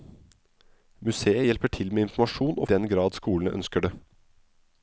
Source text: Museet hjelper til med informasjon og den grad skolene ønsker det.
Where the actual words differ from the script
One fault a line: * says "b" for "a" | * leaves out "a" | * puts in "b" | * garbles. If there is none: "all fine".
all fine